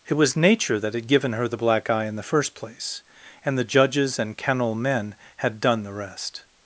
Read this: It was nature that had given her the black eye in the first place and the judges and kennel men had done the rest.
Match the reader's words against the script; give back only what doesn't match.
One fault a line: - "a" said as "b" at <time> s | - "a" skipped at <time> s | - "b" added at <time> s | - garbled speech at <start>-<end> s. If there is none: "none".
none